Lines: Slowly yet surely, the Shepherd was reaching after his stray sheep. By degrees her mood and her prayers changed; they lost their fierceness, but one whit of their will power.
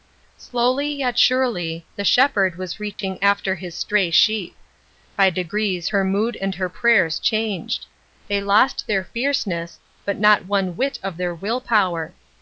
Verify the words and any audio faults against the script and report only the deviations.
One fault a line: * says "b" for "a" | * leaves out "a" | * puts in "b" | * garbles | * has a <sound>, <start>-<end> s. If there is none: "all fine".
* has a dropout, 2.9-3.0 s
* puts in "not"